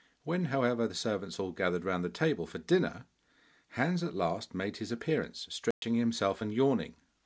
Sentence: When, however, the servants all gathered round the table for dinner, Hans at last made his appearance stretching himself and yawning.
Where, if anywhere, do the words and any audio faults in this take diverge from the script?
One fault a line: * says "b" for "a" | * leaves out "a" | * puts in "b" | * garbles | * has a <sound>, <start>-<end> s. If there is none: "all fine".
* has a dropout, 5.7-5.8 s